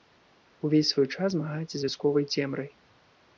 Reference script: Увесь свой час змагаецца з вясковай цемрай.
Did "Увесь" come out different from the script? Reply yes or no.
no